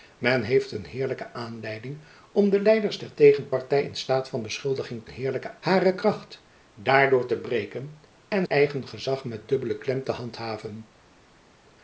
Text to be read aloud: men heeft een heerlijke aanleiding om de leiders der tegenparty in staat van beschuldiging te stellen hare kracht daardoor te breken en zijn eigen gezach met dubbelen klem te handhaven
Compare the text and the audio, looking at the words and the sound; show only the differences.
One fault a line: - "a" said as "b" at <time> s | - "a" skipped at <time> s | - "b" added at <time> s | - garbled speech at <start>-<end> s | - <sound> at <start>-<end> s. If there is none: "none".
- "stellen" said as "heerlijke" at 5.1 s
- "zijn" skipped at 8.5 s